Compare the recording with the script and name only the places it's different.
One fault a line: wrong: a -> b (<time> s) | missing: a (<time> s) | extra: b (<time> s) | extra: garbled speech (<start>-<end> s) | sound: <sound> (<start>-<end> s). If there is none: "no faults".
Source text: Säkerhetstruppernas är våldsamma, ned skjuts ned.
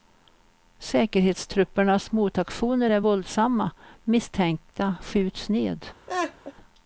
extra: motaktioner (2.1 s)
wrong: ned -> misstänkta (4.0 s)
sound: laugh (6.1-6.5 s)